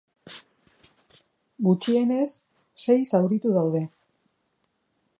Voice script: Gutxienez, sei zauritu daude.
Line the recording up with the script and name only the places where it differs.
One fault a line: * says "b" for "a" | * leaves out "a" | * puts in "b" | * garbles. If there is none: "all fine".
all fine